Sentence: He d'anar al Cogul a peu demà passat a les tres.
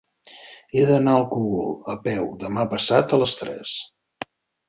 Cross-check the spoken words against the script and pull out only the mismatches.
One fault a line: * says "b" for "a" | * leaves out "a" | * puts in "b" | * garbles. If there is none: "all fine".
all fine